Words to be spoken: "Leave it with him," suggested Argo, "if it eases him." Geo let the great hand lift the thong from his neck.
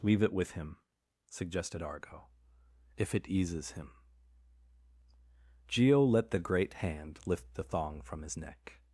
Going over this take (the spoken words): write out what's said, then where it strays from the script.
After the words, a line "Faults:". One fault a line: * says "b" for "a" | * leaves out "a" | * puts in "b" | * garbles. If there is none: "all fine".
"Leave it with him," suggested Argo, "if it eases him." Geo let the great hand lift the thong from his neck.
Faults:
all fine